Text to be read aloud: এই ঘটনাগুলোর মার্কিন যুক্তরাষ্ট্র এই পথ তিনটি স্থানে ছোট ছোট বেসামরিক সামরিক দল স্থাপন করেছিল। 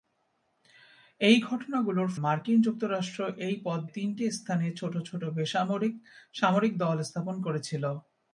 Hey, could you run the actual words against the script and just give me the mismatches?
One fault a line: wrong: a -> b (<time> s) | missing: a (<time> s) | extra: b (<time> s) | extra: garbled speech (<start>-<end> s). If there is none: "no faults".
no faults